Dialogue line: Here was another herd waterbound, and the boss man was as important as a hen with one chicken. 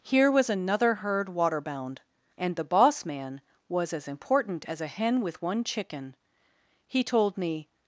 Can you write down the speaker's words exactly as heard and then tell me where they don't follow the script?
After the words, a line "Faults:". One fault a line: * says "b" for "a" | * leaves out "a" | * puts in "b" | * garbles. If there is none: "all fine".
Here was another herd waterbound, and the boss man was as important as a hen with one chicken. He told me
Faults:
* puts in "He told me"